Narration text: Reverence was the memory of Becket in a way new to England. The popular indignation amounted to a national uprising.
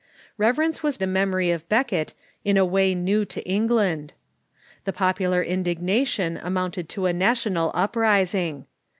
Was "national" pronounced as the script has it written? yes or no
yes